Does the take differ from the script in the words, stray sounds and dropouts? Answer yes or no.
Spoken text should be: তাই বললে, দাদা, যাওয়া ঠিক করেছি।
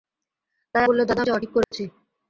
yes